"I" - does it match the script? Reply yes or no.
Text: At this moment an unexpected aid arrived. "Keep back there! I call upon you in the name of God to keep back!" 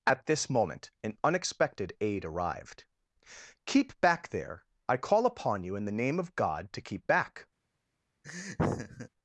yes